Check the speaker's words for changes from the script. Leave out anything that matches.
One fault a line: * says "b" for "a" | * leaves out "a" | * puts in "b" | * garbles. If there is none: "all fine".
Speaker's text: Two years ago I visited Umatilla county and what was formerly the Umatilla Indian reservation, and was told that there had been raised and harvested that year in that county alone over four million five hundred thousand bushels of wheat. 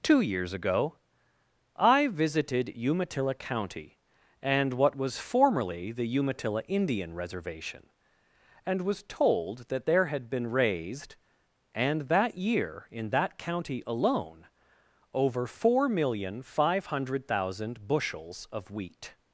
* leaves out "harvested"